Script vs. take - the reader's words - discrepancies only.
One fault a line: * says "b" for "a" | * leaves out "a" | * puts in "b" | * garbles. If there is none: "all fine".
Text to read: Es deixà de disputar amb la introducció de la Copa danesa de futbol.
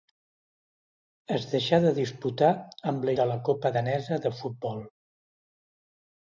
* leaves out "introducció"